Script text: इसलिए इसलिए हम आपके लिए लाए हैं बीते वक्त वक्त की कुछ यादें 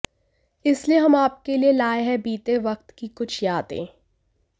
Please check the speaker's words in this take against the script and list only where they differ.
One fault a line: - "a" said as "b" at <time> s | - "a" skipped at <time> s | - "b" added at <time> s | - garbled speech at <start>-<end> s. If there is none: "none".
- "इसलिए" skipped at 1.0 s
- "वक्त" skipped at 2.9 s